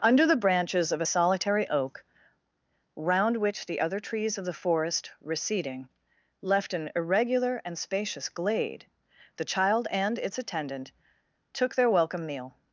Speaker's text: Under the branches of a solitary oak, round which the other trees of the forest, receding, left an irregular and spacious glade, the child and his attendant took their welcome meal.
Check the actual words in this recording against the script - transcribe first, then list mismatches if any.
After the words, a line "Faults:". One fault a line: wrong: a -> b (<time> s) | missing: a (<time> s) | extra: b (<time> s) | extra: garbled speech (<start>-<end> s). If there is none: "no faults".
Under the branches of a solitary oak, round which the other trees of the forest, receding, left an irregular and spacious glade, the child and its attendant took their welcome meal.
Faults:
wrong: his -> its (10.2 s)